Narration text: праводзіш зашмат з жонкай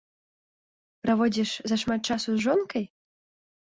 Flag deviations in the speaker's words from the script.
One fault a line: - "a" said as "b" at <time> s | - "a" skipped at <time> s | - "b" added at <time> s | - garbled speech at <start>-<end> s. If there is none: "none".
- "часу" added at 2.1 s